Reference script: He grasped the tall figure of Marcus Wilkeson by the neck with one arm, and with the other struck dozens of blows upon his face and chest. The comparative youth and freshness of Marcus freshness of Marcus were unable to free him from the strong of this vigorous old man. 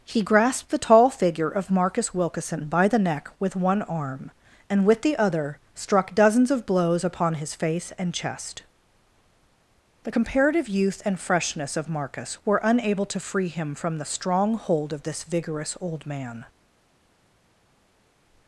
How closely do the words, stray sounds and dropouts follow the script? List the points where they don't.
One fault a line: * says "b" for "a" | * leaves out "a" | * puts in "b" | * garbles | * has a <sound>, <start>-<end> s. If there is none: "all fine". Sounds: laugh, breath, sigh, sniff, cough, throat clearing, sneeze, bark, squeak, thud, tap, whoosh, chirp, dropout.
* leaves out "freshness of Marcus"
* puts in "hold"